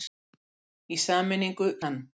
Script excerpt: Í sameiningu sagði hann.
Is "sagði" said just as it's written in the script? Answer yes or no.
no